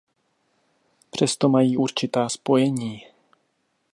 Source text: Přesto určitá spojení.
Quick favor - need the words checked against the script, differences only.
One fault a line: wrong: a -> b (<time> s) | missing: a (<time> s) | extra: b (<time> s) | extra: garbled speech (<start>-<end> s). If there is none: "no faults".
extra: mají (1.5 s)